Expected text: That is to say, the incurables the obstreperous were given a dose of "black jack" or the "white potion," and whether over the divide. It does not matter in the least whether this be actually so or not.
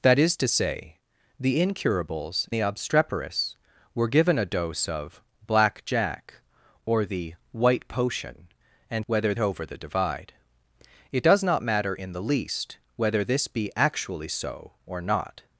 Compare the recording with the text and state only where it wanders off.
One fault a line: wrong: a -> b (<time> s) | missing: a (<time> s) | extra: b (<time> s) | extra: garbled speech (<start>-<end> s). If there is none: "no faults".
no faults